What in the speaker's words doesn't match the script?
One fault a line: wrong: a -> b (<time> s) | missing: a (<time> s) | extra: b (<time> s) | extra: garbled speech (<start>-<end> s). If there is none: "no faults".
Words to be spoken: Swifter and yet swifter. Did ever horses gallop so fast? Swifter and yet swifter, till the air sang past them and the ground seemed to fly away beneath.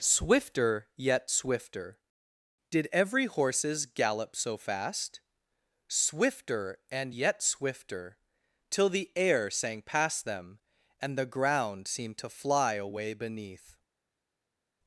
missing: and (0.9 s)
wrong: ever -> every (2.9 s)